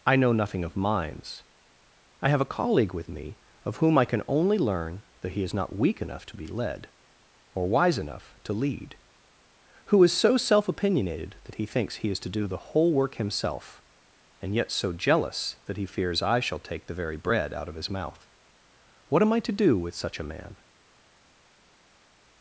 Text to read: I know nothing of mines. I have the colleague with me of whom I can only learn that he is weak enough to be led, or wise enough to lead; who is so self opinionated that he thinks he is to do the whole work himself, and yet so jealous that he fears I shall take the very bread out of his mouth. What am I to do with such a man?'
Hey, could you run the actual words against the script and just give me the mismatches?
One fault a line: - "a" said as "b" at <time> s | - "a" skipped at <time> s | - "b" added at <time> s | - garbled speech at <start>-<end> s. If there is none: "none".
- "the" said as "a" at 2.4 s
- "not" added at 5.5 s